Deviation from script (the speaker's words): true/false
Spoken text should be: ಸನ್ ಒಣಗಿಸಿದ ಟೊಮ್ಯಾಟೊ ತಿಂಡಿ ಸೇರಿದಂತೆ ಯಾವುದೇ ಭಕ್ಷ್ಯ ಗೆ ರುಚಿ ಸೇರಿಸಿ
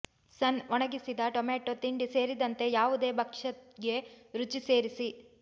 false